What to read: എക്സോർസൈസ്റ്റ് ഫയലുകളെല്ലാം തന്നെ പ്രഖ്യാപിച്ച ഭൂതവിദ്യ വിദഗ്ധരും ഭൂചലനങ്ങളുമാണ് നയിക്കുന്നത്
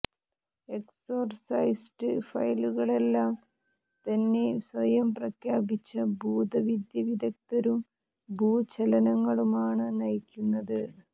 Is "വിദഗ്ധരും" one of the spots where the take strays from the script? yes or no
no